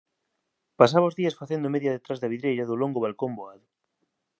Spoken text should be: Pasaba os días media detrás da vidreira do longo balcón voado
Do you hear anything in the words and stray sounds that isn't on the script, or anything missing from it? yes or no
yes